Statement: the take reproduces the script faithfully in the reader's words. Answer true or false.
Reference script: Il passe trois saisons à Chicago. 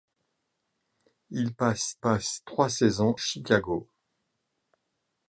false